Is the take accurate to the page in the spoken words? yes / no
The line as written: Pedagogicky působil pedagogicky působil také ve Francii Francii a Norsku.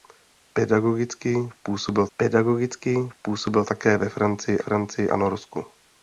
yes